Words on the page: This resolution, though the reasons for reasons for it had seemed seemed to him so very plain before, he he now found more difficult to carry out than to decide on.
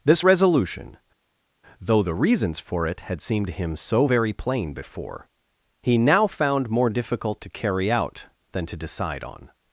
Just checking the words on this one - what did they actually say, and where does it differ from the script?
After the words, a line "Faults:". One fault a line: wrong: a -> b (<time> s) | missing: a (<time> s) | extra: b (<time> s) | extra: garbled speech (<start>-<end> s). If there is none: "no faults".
This resolution, though the reasons for it had seemed to him so very plain before, he now found more difficult to carry out than to decide on.
Faults:
missing: reasons for (2.9 s)
missing: seemed (3.5 s)
missing: he (6.0 s)